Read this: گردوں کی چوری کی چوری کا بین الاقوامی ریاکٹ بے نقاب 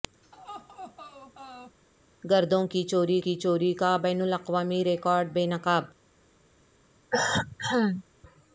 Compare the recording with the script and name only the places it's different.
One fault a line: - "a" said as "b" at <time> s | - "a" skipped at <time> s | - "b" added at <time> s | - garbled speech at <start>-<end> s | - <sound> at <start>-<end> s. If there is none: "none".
- laugh at 0.2-1.8 s
- cough at 7.1-8.0 s